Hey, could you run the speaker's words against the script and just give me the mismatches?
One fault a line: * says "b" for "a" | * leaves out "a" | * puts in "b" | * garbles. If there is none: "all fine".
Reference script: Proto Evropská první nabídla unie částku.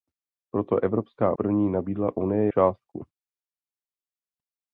all fine